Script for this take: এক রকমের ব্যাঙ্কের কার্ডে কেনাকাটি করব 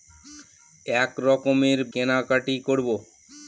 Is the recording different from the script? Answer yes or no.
yes